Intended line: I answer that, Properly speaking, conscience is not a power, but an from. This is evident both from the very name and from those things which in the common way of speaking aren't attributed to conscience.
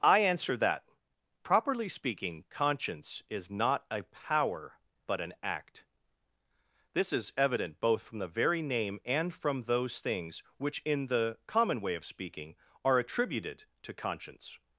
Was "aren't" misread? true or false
true